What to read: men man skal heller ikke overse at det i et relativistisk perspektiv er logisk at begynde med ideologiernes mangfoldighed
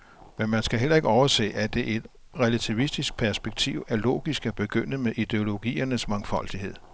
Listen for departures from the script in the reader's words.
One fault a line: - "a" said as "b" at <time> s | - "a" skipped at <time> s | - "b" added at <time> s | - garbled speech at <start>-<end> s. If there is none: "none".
none